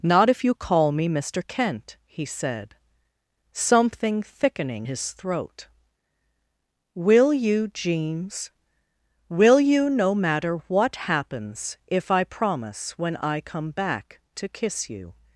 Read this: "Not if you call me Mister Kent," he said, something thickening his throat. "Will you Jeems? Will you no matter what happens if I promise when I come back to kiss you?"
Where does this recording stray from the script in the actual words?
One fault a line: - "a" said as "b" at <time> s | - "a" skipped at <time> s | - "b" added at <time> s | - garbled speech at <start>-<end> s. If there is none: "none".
none